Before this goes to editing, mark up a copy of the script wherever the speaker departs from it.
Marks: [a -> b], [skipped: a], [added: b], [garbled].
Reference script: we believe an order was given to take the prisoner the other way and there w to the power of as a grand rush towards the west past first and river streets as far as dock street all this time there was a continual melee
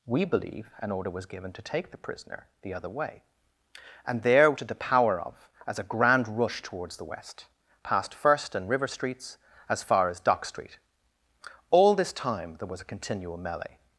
we believe an order was given to take the prisoner the other way and there [skipped: w] to the power of as a grand rush towards the west past first and river streets as far as dock street all this time there was a continual melee